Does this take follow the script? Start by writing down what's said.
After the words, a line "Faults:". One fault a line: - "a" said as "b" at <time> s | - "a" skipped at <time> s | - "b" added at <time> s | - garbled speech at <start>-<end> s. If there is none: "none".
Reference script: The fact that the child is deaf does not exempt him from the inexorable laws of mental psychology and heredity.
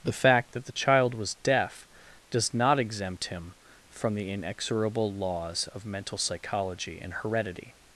The fact that the child was deaf does not exempt him from the inexorable laws of mental psychology and heredity.
Faults:
- "is" said as "was" at 1.1 s